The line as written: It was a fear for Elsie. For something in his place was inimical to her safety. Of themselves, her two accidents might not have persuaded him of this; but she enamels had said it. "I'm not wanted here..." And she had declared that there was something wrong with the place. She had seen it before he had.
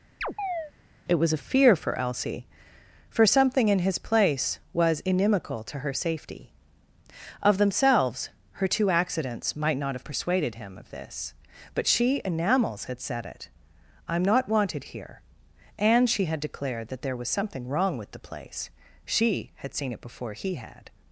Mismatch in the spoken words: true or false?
false